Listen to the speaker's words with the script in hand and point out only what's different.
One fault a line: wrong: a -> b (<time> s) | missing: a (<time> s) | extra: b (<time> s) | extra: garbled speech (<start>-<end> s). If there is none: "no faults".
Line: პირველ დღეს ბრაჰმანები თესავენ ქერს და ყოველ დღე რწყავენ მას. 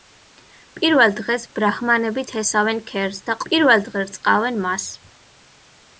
wrong: ყოველ -> პირველ (3.5 s)